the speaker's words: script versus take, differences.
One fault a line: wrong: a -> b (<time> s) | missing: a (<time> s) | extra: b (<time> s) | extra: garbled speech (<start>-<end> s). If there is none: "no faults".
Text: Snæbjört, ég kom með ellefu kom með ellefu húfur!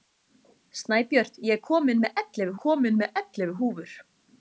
no faults